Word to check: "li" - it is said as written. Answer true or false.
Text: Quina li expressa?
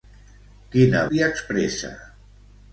true